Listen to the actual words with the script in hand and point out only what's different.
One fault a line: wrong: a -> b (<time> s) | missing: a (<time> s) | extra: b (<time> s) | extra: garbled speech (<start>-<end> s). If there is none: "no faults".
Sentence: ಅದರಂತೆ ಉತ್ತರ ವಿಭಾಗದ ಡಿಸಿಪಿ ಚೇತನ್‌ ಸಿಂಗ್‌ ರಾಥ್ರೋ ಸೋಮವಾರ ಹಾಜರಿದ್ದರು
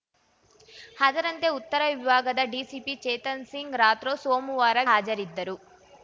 no faults